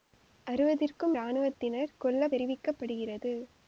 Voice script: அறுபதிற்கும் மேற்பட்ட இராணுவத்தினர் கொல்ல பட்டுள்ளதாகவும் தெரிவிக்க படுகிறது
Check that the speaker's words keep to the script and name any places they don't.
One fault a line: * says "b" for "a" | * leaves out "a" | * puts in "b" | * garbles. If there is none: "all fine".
* leaves out "மேற்பட்ட"
* leaves out "பட்டுள்ளதாகவும்"